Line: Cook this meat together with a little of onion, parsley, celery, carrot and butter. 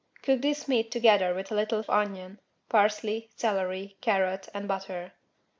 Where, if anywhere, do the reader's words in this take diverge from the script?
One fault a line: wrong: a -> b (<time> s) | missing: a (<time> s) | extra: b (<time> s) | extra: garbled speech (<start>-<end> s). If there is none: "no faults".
no faults